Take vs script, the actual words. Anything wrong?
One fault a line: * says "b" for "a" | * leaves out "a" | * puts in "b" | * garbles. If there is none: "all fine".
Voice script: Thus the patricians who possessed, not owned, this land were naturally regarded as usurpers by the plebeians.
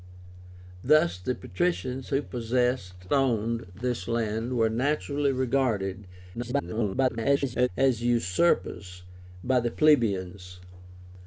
* leaves out "not"
* garbles